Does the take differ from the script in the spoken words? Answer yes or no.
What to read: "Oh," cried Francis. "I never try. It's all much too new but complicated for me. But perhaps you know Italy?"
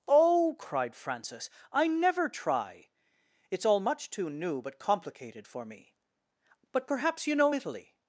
no